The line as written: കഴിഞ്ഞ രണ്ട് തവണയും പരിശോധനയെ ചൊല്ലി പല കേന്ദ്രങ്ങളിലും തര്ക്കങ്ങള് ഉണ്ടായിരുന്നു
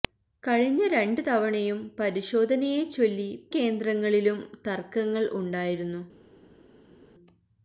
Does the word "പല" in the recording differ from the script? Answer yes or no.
yes